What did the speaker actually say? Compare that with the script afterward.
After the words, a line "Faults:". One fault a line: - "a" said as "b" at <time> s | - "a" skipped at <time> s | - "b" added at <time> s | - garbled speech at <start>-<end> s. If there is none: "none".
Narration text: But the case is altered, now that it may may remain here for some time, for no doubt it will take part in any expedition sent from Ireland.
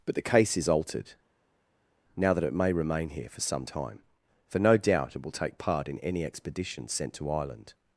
But the case is altered, now that it may remain here for some time, for no doubt it will take part in any expedition sent to Ireland.
Faults:
- "may" skipped at 2.7 s
- "from" said as "to" at 7.1 s